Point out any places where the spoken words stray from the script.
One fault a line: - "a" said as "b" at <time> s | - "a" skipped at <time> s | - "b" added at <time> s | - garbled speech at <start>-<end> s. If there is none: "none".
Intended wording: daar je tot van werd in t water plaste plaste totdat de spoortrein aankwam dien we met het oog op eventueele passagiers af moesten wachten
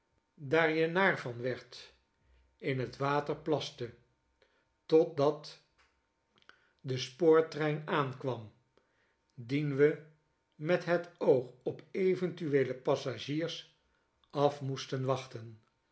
- "tot" said as "naar" at 0.9 s
- "plaste" skipped at 3.9 s